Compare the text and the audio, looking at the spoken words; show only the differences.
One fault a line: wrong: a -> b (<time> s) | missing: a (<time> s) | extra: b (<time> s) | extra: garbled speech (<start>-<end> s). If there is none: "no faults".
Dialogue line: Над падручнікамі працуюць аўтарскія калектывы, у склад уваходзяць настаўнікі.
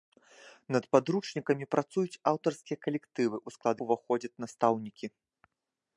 no faults